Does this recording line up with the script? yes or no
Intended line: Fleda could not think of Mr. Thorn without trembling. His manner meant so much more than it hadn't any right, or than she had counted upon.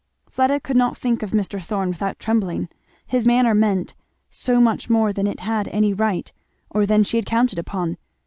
no